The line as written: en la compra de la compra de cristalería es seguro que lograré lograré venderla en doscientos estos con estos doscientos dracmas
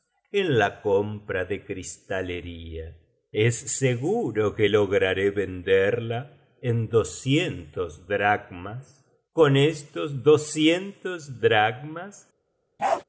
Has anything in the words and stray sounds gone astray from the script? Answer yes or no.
yes